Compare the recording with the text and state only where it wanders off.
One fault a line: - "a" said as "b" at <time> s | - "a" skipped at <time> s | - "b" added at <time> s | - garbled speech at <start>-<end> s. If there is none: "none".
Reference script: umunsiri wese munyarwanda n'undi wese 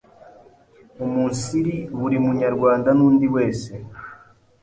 - "wese" said as "buri" at 2.0 s